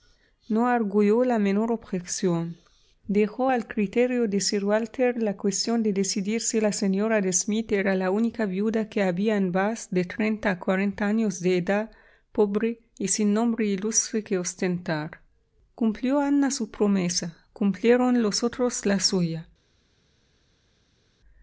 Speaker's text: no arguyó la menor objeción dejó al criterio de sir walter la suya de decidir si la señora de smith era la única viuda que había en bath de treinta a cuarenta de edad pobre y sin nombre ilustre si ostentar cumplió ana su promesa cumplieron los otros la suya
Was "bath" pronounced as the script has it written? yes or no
yes